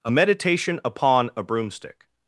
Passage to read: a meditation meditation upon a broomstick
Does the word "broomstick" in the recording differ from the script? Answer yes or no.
no